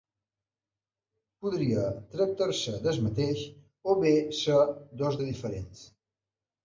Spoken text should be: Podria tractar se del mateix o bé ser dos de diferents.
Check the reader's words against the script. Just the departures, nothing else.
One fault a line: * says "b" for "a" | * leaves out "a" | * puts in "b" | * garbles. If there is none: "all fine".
all fine